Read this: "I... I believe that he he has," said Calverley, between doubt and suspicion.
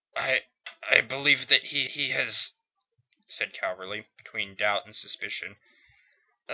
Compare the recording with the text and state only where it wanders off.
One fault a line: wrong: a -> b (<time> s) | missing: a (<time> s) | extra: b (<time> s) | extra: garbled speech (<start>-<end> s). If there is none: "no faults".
no faults